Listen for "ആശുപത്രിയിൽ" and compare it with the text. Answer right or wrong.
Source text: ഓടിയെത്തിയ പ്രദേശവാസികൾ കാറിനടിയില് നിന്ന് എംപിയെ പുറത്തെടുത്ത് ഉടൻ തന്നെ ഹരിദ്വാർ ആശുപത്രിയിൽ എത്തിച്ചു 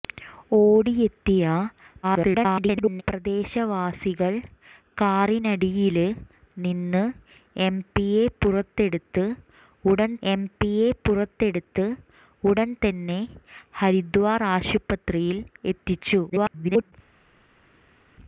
right